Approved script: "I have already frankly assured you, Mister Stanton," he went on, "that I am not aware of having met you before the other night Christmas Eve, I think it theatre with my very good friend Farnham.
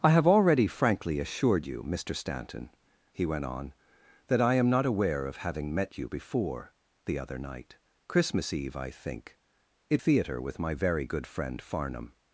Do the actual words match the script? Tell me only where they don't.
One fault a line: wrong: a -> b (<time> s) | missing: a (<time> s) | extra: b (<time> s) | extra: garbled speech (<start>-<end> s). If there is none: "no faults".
no faults